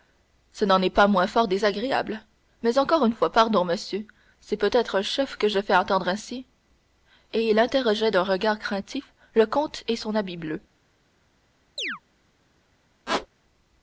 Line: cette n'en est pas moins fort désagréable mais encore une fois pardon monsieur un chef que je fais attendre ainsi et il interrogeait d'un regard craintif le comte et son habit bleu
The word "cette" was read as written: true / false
false